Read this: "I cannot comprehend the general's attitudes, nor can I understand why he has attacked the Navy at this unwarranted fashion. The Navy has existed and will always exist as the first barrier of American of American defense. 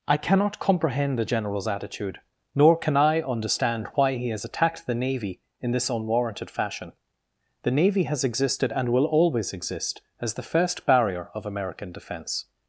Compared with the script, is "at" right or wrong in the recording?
wrong